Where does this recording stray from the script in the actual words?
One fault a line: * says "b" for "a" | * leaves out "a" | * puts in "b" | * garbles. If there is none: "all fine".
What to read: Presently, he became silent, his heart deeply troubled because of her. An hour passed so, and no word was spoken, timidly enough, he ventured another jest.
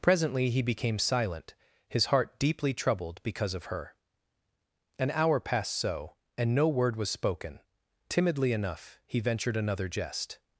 all fine